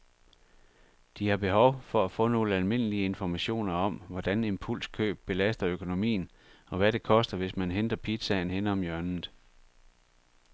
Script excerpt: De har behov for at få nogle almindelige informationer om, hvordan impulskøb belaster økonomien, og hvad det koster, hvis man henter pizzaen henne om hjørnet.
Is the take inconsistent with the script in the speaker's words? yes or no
no